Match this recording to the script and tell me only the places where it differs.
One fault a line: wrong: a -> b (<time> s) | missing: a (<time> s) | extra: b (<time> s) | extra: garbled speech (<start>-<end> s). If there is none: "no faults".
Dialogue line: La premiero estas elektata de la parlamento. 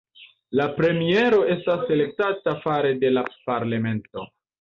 extra: fare (2.6 s)